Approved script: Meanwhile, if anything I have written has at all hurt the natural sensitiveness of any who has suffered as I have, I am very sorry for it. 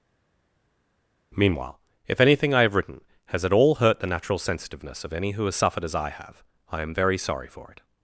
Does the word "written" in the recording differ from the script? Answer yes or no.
no